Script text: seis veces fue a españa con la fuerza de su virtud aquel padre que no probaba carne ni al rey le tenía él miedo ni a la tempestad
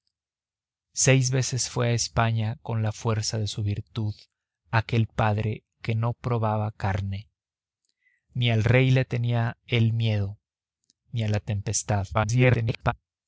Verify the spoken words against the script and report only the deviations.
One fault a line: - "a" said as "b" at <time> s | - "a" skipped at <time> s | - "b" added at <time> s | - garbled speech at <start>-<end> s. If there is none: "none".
- garbled speech at 12.1-12.9 s